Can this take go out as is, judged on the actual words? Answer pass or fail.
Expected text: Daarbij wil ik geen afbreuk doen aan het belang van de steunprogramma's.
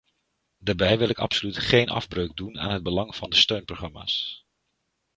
fail